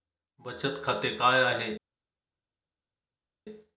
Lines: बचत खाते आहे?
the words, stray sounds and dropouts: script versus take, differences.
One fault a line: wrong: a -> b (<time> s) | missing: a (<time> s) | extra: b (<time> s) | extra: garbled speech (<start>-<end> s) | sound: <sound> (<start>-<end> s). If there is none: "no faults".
extra: काय (1.2 s)